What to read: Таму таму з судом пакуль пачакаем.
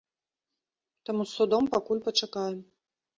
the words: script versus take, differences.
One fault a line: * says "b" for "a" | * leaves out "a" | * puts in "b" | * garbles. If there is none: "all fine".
* leaves out "таму"